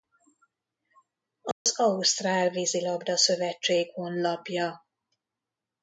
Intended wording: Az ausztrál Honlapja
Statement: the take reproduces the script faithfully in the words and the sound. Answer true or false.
false